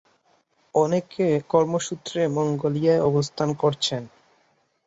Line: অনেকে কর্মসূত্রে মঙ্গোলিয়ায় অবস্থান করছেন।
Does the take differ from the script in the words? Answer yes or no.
no